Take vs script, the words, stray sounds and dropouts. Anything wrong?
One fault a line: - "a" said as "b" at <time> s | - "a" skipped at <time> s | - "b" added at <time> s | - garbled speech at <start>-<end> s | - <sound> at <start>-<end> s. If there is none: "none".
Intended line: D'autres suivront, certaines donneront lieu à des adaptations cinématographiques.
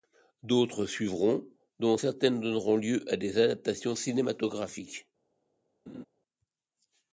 - "dont" added at 1.8 s
- laugh at 5.9-6.1 s